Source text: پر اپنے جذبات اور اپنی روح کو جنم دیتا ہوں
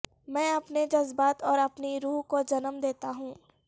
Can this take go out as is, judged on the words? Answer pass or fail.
fail